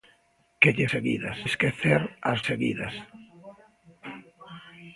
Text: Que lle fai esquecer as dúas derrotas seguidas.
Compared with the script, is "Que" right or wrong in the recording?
right